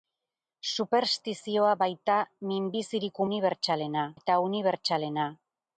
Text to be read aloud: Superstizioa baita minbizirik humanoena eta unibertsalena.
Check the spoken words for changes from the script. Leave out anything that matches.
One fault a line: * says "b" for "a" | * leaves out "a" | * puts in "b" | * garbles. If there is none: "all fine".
* says "unibertsalena" for "humanoena"